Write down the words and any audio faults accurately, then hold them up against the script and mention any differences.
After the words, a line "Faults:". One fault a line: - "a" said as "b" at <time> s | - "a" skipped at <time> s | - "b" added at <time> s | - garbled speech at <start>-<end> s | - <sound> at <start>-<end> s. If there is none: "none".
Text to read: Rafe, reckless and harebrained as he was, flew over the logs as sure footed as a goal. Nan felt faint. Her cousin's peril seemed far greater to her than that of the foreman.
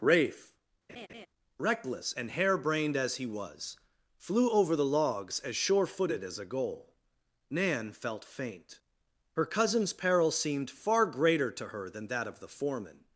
Rafe, reckless and harebrained as he was, flew over the logs as sure footed as a goal. Nan felt faint. Her cousin's peril seemed far greater to her than that of the foreman.
Faults:
- laugh at 0.9-1.3 s